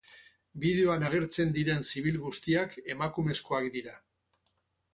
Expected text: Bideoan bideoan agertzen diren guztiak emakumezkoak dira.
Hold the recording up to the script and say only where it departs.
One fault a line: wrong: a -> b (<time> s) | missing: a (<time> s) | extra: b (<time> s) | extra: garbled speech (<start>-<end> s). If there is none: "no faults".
missing: bideoan (1.0 s)
extra: zibil (1.9 s)